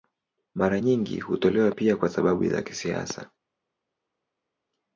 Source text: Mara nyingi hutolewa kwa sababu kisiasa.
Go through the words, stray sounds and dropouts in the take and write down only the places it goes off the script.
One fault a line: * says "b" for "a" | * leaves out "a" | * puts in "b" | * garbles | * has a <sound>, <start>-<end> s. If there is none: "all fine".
* puts in "pia"
* puts in "za"